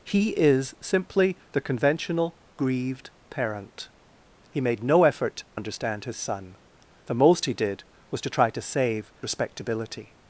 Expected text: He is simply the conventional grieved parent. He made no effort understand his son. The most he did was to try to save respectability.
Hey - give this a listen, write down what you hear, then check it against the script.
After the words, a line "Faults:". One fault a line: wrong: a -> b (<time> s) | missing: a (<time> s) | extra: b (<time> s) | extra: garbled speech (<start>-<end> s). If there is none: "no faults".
He is simply the conventional grieved parent. He made no effort understand his son. The most he did was to try to save respectability.
Faults:
no faults